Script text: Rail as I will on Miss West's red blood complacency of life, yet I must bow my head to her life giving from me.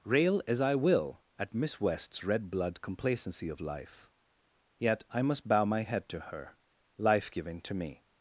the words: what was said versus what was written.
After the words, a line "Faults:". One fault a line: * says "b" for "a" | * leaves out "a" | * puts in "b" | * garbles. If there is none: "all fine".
Rail as I will at Miss West's red blood complacency of life, yet I must bow my head to her life giving to me.
Faults:
* says "at" for "on"
* says "to" for "from"